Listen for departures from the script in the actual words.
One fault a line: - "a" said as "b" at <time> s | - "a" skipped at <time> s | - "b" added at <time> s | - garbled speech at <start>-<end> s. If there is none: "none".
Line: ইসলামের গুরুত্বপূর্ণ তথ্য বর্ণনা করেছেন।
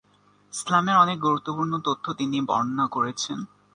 - "অনেক" added at 0.9 s
- "তিনি" added at 2.1 s